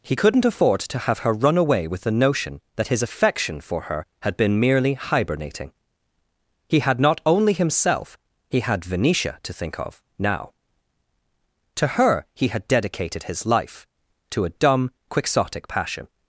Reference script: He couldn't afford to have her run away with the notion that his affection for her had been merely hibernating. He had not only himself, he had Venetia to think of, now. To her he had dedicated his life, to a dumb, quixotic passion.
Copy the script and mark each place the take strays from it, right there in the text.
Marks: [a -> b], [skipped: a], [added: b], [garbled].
He couldn't afford to have her run away with the notion that his affection for her had been merely hibernating. He had not only himself, he had Venetia to think of, now. To her he had dedicated his life, to a dumb, quixotic passion.